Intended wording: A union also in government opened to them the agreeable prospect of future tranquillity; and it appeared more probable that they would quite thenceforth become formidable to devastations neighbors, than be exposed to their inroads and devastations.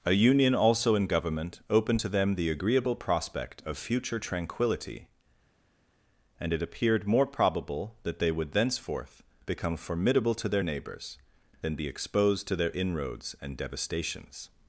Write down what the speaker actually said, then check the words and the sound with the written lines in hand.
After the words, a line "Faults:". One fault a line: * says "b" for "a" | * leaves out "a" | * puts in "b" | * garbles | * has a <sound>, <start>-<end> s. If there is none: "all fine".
A union also in government opened to them the agreeable prospect of future tranquillity; and it appeared more probable that they would thenceforth become formidable to their neighbors, than be exposed to their inroads and devastations.
Faults:
* leaves out "quite"
* says "their" for "devastations"